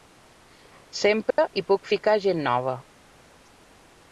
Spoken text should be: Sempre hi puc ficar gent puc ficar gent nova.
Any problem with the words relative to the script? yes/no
yes